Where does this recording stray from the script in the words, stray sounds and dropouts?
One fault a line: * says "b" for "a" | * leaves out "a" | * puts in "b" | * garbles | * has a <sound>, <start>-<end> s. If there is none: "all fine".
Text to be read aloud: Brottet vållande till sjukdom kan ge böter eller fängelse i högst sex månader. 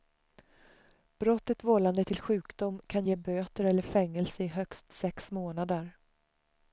all fine